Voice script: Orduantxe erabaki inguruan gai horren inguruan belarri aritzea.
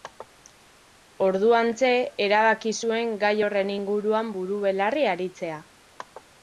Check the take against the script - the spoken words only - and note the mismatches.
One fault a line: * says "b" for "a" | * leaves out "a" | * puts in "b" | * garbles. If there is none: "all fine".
* says "zuen" for "inguruan"
* puts in "buru"